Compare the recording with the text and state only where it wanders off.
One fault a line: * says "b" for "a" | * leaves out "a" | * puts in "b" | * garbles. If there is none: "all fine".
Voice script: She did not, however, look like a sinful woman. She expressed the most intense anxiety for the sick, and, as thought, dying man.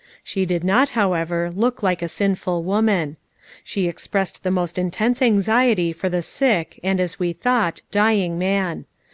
* puts in "we"